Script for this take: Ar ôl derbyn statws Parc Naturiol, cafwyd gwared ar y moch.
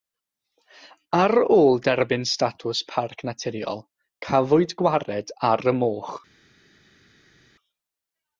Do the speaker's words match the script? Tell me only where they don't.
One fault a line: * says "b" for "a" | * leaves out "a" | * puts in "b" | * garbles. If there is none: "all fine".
all fine